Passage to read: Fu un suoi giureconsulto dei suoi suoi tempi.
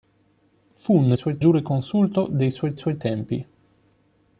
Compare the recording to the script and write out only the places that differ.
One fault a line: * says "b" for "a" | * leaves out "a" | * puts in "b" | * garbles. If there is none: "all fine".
all fine